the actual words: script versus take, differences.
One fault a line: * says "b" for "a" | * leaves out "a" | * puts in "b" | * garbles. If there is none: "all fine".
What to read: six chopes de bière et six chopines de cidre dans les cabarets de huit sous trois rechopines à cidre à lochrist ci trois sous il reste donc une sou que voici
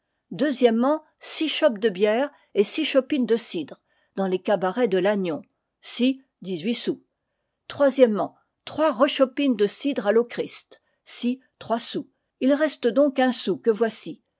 * puts in "lannion ci dix"
* says "de" for "à"
* says "un" for "une"